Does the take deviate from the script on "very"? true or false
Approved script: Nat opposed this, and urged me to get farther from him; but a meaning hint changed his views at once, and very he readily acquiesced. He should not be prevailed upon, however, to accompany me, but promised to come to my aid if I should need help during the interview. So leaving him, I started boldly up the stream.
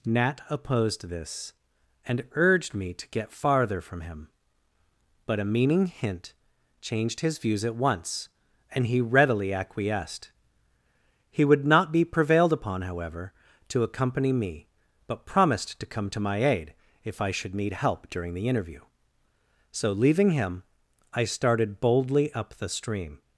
true